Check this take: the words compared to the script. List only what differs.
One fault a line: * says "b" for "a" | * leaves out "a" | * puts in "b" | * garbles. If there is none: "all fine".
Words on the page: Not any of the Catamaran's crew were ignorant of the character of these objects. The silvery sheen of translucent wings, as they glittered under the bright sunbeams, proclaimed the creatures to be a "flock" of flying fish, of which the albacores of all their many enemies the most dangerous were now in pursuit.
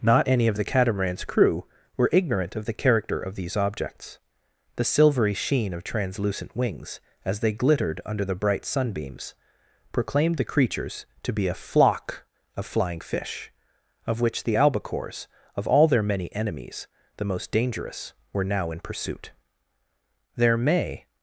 * puts in "There may"